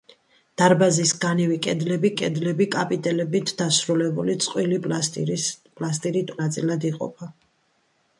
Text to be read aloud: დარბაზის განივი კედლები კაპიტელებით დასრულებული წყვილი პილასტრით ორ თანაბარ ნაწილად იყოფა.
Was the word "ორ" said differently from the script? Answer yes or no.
yes